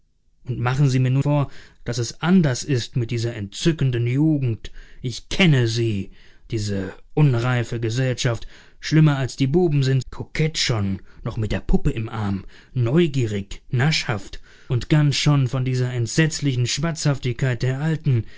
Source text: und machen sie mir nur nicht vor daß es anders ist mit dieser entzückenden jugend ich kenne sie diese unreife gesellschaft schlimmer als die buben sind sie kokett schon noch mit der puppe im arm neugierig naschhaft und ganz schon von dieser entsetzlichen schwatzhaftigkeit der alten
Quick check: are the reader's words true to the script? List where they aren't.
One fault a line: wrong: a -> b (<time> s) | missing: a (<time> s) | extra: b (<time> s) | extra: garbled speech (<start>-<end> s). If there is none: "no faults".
missing: nicht (1.2 s)
missing: sie (10.0 s)